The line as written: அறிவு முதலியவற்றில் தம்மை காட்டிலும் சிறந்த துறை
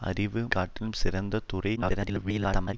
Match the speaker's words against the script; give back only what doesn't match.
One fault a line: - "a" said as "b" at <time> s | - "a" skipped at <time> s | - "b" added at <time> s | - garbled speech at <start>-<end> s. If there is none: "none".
- "முதலியவற்றில் தம்மை" skipped at 0.4 s
- garbled speech at 1.8-2.7 s